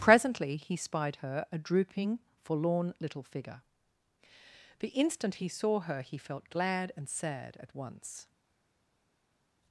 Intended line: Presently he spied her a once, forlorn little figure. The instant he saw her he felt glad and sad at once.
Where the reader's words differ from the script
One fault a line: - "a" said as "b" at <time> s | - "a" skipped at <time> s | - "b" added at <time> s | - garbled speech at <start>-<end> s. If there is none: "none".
- "once" said as "drooping" at 1.6 s